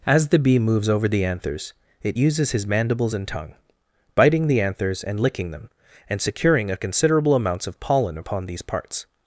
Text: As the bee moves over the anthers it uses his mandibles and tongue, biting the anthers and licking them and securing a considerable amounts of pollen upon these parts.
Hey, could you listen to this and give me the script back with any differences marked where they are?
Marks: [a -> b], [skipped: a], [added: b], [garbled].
As the bee moves over the anthers it uses his mandibles and tongue, biting the anthers and licking them and securing a considerable amounts of pollen upon these parts.